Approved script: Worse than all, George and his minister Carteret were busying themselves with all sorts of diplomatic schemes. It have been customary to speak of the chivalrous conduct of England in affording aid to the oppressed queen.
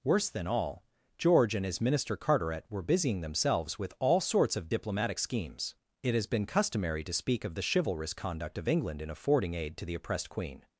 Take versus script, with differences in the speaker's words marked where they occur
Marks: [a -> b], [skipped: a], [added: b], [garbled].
Worse than all, George and his minister Carteret were busying themselves with all sorts of diplomatic schemes. It [have -> has] been customary to speak of the chivalrous conduct of England in affording aid to the oppressed queen.